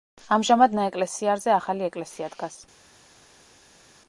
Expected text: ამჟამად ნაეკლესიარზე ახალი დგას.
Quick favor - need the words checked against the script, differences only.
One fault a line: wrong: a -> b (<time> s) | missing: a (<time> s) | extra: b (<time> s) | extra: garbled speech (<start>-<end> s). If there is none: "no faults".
extra: ეკლესია (1.9 s)